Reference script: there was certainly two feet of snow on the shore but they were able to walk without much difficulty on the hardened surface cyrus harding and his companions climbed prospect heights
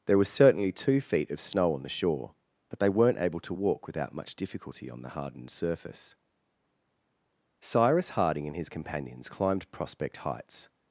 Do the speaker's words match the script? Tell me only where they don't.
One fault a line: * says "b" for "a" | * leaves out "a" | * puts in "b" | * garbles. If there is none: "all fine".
* says "weren't" for "were"